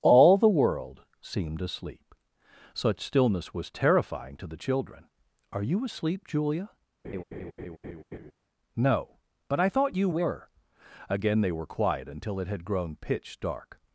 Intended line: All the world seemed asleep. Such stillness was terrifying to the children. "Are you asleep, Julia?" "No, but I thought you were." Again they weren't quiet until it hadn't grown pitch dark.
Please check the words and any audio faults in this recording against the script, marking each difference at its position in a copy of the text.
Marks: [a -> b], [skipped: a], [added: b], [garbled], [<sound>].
All the world seemed asleep. Such stillness was terrifying to the children. "Are you asleep, Julia?" [laugh] "No, but I thought you were." Again they [weren't -> were] quiet until it [hadn't -> had] grown pitch dark.